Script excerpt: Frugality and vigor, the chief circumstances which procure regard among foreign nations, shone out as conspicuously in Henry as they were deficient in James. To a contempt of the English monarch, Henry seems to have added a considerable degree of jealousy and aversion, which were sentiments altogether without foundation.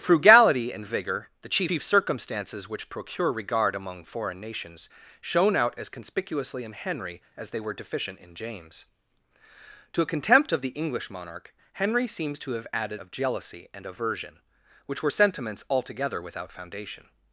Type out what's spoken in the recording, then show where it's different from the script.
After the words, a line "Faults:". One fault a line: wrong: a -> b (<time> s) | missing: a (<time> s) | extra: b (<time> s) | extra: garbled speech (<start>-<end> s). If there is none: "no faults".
Frugality and vigor, the chief chief circumstances which procure regard among foreign nations, shone out as conspicuously in Henry as they were deficient in James. To a contempt of the English monarch, Henry seems to have added of jealousy and aversion, which were sentiments altogether without foundation.
Faults:
extra: chief (1.6 s)
missing: a considerable degree (13.0 s)